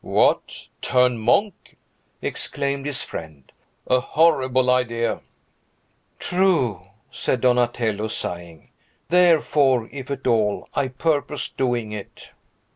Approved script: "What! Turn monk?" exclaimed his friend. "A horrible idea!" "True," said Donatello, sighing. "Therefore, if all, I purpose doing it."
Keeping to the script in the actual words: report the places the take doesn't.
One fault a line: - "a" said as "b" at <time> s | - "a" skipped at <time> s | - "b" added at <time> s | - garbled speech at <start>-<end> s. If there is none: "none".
- "at" added at 10.1 s